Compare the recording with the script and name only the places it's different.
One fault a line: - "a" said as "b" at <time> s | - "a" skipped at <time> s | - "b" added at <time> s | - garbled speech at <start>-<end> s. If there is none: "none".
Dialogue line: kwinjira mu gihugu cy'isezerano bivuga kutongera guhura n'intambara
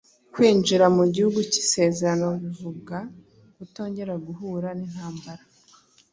none